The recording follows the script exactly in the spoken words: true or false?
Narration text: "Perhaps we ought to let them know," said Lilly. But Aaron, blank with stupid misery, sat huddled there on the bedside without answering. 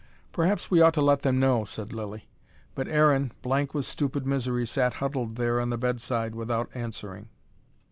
true